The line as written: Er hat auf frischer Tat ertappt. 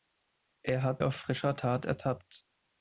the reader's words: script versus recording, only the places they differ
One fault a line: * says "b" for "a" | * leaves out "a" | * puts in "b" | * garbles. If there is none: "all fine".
all fine